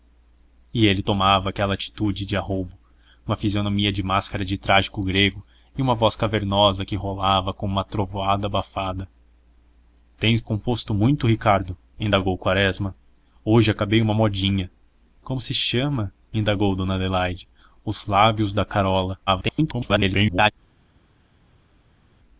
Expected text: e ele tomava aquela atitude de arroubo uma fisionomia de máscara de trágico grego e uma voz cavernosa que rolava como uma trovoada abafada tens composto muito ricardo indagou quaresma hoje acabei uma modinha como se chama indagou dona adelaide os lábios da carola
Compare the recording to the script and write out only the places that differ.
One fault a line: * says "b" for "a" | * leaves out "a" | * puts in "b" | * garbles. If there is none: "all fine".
* garbles